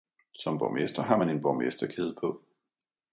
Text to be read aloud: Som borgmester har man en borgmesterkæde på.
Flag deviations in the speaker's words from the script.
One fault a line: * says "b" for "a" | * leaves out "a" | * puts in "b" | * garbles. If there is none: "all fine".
all fine